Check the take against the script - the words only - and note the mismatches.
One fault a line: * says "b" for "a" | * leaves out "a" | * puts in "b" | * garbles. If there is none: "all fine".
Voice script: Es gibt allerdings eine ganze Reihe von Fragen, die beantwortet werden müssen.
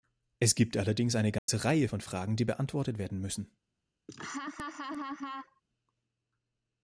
all fine